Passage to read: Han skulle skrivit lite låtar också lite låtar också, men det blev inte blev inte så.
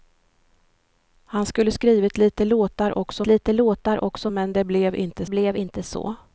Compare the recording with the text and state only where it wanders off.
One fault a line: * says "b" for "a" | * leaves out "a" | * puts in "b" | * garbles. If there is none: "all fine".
all fine